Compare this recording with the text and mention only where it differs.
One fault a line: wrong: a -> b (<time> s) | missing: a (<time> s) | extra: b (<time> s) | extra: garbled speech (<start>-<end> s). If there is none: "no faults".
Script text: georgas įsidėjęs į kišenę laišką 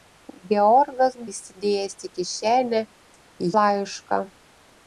no faults